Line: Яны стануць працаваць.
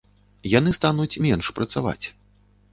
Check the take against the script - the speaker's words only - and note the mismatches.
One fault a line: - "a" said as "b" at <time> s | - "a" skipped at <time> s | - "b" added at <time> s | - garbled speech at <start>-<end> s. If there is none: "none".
- "менш" added at 1.3 s